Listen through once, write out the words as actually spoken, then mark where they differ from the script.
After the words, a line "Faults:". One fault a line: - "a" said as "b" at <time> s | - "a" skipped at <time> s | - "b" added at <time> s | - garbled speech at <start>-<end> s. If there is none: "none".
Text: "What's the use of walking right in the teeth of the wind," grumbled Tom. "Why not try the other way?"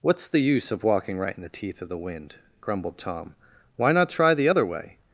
"What's the use of walking right in the teeth of the wind," grumbled Tom. "Why not try the other way?"
Faults:
none